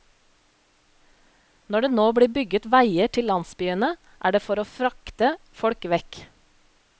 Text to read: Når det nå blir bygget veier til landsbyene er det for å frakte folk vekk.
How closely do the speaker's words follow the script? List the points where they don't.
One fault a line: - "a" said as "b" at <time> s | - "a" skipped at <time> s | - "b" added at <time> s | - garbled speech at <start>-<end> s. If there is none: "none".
none